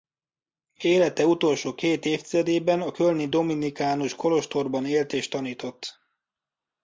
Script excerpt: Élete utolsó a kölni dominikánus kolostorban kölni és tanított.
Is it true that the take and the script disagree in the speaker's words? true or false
true